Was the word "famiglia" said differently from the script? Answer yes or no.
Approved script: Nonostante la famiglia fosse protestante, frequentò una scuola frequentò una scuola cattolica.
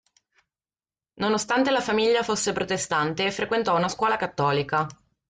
no